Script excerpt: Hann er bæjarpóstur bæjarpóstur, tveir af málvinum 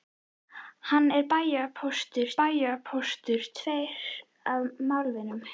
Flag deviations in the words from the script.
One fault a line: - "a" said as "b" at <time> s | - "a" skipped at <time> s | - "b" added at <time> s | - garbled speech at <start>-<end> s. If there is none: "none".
none